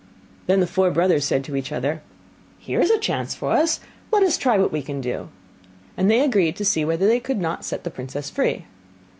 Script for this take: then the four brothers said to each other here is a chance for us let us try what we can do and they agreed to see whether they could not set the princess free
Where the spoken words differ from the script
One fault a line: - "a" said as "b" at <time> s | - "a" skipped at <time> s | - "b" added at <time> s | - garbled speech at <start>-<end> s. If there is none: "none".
none